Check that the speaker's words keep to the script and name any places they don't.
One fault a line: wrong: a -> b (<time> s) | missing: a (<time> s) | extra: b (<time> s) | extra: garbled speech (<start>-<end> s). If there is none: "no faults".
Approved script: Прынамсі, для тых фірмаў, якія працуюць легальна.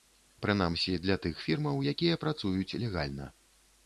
no faults